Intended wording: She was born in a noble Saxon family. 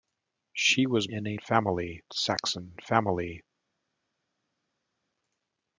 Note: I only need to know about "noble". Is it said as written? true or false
false